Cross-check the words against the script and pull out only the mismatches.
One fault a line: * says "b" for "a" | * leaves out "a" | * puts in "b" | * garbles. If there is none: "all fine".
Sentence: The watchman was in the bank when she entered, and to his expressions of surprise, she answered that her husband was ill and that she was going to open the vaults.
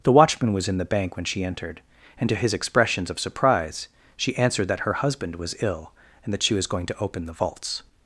all fine